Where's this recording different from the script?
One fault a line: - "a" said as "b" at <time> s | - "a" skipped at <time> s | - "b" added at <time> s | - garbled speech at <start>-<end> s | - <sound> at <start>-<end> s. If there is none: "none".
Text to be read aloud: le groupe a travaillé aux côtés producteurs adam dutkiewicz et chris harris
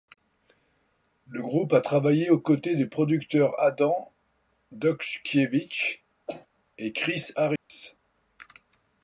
- "des" added at 2.8 s
- cough at 6.3-6.5 s
- dropout at 7.6-7.7 s